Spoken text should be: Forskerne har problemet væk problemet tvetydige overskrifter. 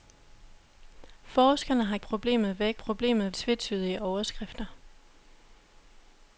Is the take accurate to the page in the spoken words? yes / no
yes